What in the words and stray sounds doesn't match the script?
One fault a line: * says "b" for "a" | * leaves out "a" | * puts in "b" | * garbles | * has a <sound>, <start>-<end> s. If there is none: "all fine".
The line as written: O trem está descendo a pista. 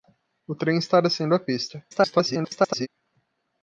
* garbles